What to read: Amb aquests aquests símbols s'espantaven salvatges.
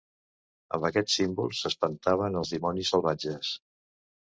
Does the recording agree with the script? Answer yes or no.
no